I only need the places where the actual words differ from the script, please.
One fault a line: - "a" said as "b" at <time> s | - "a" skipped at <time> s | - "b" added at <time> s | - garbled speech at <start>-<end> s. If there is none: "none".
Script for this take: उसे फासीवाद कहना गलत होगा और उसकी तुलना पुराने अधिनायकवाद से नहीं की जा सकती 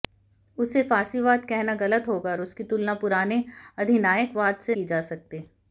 - "नहीं" skipped at 4.7 s